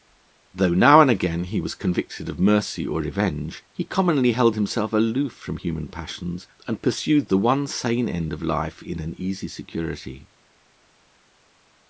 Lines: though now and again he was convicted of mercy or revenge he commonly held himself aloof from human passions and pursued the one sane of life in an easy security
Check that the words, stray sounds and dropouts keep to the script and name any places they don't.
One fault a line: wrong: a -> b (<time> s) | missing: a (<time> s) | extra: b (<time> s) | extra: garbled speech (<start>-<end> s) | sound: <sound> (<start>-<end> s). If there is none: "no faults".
extra: end (8.1 s)